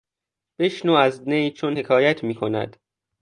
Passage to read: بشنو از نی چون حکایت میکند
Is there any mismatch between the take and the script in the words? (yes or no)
no